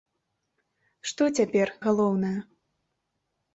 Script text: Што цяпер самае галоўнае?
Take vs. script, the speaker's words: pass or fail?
fail